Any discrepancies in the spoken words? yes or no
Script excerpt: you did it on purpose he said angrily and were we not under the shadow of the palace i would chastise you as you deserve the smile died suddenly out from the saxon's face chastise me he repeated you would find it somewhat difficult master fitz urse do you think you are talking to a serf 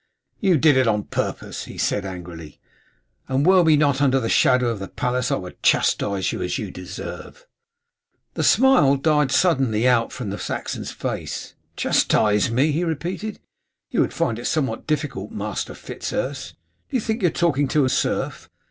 no